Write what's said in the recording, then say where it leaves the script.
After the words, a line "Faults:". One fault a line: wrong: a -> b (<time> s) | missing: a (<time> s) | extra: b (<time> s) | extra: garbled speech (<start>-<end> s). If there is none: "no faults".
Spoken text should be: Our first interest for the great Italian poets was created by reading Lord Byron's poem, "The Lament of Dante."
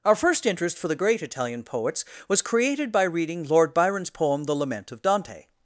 Our first interest for the great Italian poets was created by reading Lord Byron's poem, "The Lament of Dante."
Faults:
no faults